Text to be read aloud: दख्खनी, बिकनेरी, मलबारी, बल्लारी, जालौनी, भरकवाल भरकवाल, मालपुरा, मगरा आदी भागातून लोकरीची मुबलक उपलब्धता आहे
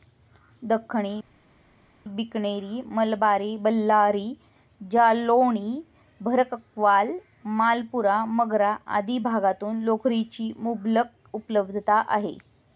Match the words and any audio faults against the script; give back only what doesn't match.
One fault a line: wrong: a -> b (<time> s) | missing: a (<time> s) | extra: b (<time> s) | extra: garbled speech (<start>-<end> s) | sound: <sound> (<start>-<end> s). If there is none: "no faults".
missing: भरकवाल (7.1 s)